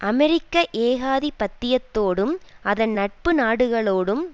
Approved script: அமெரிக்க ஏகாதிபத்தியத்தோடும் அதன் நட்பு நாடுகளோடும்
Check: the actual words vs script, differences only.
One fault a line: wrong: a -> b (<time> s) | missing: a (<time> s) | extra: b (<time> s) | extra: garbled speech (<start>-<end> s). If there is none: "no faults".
no faults